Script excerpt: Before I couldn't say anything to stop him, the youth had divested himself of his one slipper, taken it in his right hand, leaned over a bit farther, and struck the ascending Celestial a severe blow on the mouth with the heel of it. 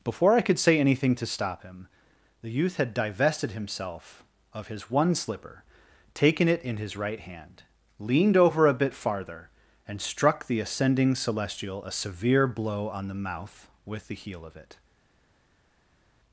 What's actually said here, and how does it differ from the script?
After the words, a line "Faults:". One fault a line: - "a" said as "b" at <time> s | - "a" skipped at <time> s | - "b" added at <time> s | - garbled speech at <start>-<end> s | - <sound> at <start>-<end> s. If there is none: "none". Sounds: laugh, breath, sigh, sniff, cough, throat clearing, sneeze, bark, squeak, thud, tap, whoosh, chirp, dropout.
Before I could say anything to stop him, the youth had divested himself of his one slipper, taken it in his right hand, leaned over a bit farther, and struck the ascending Celestial a severe blow on the mouth with the heel of it.
Faults:
- "couldn't" said as "could" at 0.4 s